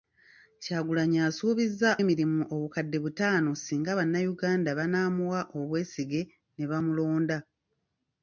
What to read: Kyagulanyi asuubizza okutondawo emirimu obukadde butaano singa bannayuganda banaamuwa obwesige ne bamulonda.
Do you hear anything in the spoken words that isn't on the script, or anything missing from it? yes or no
yes